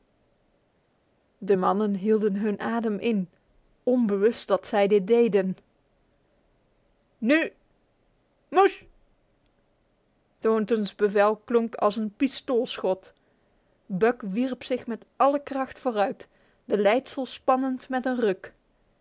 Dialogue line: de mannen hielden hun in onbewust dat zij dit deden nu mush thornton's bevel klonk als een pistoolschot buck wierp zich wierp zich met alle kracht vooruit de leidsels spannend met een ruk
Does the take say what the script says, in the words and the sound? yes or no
no